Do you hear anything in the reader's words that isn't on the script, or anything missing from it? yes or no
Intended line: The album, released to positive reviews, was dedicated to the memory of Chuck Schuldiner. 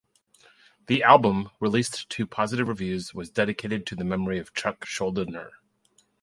no